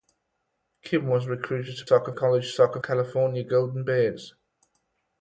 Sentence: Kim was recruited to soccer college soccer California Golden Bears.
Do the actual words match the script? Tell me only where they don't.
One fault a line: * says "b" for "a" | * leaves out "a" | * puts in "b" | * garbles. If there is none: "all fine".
all fine